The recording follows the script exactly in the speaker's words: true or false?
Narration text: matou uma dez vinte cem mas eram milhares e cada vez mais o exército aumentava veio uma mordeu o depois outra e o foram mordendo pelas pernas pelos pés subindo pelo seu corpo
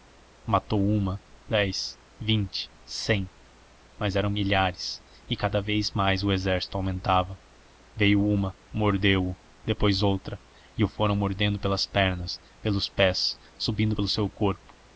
true